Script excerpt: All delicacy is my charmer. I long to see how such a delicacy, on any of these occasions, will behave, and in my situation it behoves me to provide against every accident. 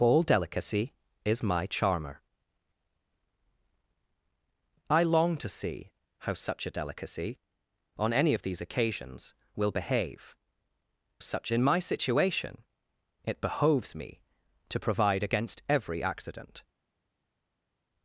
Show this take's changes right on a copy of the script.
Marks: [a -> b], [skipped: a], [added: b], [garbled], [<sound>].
All delicacy is my charmer. I long to see how such a delicacy, on any of these occasions, will behave, [and -> such] in my situation it behoves me to provide against every accident.